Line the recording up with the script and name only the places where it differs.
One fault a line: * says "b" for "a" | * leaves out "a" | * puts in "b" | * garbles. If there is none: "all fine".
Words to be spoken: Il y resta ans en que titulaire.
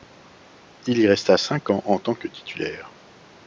* puts in "cinq"
* puts in "tant"